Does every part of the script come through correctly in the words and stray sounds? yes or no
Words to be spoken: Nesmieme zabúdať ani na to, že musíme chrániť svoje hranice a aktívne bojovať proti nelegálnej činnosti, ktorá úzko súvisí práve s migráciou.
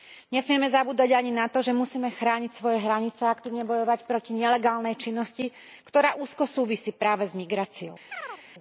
no